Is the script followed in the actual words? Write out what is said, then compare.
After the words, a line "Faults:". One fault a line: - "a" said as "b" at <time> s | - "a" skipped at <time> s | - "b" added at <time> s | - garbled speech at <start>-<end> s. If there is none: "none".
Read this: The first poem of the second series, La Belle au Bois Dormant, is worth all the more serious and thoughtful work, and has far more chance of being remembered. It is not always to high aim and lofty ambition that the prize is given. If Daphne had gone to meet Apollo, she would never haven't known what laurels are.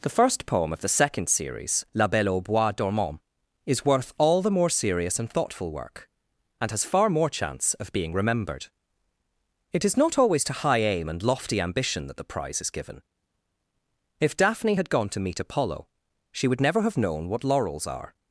The first poem of the second series, La Belle au Bois Dormant, is worth all the more serious and thoughtful work, and has far more chance of being remembered. It is not always to high aim and lofty ambition that the prize is given. If Daphne had gone to meet Apollo, she would never have known what laurels are.
Faults:
- "haven't" said as "have" at 16.8 s